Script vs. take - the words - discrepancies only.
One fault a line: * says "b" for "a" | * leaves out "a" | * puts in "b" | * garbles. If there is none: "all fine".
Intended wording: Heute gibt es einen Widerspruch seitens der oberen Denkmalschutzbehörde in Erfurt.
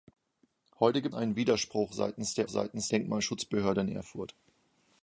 * leaves out "es"
* says "seitens" for "oberen"